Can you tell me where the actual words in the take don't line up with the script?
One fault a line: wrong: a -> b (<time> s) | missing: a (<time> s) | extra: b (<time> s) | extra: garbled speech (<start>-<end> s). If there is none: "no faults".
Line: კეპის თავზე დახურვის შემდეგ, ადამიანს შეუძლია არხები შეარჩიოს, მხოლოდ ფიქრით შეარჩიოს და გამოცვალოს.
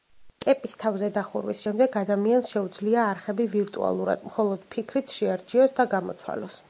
wrong: შეარჩიოს -> ვირტუალურად (3.6 s)